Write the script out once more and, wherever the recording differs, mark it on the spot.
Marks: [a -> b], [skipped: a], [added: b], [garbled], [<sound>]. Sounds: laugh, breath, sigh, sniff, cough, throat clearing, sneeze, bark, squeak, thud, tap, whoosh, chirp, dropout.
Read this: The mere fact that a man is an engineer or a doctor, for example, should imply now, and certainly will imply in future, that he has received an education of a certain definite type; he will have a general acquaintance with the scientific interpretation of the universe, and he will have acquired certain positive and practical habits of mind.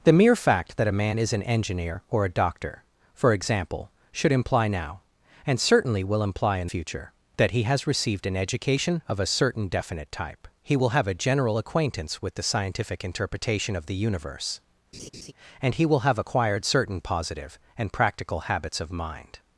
The mere fact that a man is an engineer or a doctor, for example, should imply now, and certainly will imply in future, that he has received an education of a certain definite type; he will have a general acquaintance with the scientific interpretation of the universe, [laugh] and he will have acquired certain positive and practical habits of mind.